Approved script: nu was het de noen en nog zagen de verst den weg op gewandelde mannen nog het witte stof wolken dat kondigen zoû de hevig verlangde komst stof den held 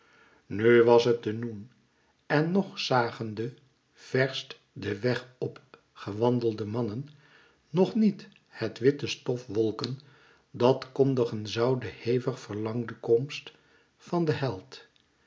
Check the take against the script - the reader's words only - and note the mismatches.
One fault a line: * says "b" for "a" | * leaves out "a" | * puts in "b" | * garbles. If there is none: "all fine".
* puts in "niet"
* says "van" for "stof"